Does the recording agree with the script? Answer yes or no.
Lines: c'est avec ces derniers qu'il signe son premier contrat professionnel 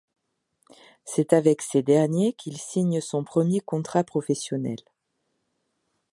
yes